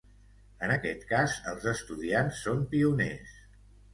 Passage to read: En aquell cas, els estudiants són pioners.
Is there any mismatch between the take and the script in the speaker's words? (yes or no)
yes